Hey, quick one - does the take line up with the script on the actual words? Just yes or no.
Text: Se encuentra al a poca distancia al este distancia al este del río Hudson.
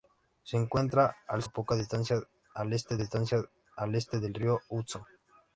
yes